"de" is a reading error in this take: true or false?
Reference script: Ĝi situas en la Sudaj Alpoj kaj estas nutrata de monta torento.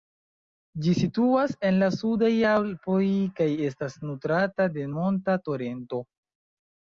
false